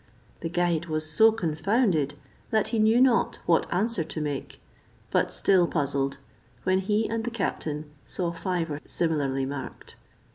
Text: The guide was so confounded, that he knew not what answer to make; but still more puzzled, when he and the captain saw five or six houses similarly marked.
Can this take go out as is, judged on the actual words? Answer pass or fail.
fail